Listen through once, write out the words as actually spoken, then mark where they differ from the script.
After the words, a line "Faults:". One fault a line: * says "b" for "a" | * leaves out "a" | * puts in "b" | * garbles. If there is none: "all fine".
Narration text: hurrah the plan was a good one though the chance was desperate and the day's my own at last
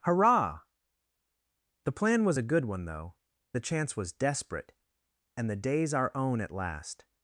hurrah the plan was a good one though the chance was desperate and the day's our own at last
Faults:
* says "our" for "my"